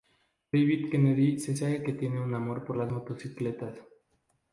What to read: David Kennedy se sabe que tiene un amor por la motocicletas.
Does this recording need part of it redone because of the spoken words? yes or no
yes